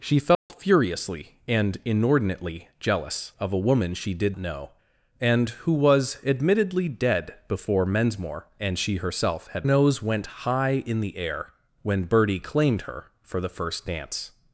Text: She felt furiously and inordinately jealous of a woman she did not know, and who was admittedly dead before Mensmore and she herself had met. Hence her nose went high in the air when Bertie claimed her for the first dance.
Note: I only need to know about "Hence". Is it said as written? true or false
false